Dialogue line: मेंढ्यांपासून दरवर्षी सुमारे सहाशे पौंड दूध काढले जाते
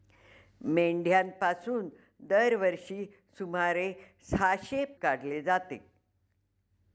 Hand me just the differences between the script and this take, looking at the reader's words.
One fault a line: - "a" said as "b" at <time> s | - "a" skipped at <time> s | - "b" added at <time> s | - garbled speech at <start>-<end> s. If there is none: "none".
- "पौंड दूध" skipped at 4.8 s